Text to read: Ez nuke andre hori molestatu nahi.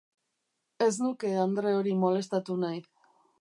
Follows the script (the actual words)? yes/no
yes